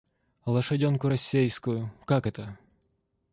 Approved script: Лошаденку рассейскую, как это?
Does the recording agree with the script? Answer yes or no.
yes